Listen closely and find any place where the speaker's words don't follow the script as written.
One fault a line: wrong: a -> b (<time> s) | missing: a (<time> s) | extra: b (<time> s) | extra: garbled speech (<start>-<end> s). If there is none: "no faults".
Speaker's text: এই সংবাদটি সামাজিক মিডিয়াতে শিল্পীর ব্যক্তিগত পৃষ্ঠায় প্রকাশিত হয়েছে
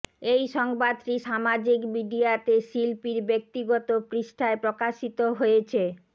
no faults